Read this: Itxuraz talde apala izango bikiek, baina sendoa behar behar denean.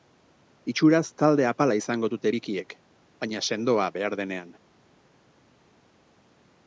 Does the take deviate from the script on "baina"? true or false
false